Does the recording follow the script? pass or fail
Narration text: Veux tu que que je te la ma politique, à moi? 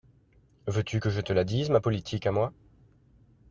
fail